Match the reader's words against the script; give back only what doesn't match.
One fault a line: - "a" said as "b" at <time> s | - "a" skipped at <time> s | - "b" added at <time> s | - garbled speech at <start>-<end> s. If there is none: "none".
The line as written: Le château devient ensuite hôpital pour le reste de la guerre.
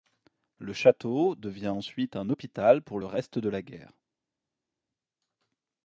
- "un" added at 2.1 s